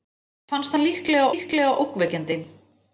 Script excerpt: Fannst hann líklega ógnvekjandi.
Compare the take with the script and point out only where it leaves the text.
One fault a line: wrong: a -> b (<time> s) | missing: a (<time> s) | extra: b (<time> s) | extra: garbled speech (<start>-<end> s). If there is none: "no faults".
extra: líklega (1.3 s)